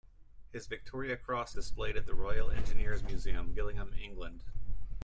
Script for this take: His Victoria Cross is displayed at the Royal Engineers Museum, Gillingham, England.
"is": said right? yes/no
no